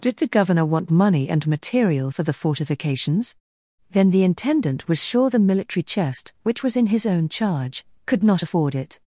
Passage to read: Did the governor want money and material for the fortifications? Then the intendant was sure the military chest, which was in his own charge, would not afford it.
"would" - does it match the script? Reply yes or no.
no